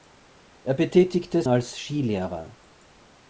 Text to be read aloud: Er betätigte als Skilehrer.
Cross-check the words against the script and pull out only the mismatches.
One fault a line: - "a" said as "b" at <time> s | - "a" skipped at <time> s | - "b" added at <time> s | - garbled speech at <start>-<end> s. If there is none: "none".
none